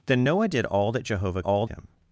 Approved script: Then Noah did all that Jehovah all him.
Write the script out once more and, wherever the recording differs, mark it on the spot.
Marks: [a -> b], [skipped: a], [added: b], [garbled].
Then Noah did all that Jehovah all him.